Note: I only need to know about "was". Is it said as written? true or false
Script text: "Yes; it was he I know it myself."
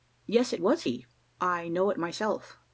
true